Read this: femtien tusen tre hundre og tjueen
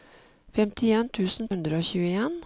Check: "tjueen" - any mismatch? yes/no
no